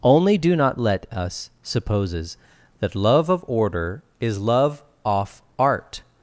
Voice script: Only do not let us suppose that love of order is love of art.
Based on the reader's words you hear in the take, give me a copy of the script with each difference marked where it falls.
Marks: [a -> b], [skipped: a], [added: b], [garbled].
Only do not let us [suppose -> supposes] that love of order is love [of -> off] art.